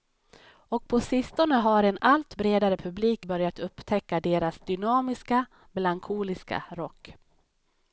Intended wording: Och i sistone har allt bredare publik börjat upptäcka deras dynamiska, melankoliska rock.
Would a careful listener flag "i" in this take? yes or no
yes